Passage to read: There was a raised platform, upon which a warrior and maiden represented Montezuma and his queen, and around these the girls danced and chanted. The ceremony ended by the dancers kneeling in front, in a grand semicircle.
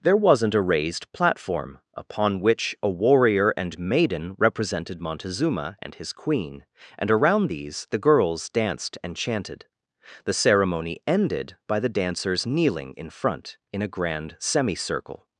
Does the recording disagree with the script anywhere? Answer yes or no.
yes